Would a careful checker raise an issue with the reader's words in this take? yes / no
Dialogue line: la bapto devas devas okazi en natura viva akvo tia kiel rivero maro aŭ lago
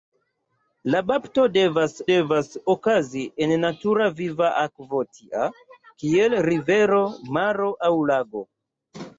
no